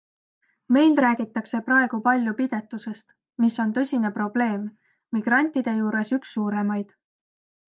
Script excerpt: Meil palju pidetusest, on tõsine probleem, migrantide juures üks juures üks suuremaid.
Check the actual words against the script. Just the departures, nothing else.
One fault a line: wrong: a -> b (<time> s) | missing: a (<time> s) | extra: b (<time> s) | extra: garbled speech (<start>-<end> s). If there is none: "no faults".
extra: räägitakse praegu (1.0 s)
extra: mis (3.4 s)
missing: juures üks (6.3 s)